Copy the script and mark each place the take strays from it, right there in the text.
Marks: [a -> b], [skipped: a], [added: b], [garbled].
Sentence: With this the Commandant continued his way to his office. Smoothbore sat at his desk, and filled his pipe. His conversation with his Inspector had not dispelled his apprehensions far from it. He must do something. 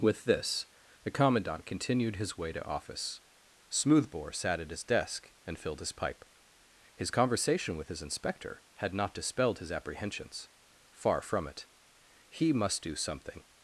With this the Commandant continued his way to [skipped: his] office. Smoothbore sat at his desk, and filled his pipe. His conversation with his Inspector had not dispelled his apprehensions far from it. He must do something.